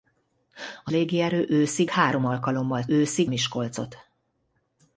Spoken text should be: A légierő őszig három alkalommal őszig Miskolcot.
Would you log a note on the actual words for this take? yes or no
no